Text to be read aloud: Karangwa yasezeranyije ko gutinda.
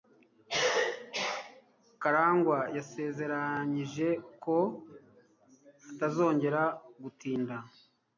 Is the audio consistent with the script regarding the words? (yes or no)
no